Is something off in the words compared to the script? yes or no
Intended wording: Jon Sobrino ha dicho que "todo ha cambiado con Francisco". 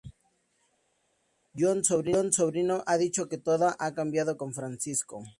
no